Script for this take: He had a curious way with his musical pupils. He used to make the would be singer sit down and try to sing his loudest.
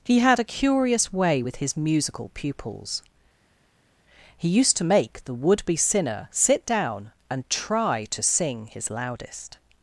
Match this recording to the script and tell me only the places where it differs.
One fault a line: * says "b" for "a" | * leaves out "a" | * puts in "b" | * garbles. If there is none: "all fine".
* says "sinner" for "singer"